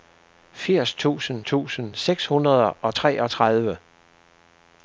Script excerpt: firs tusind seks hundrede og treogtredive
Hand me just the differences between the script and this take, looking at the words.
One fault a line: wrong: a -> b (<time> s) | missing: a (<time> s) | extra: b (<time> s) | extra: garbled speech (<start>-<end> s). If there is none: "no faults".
extra: tusind (1.4 s)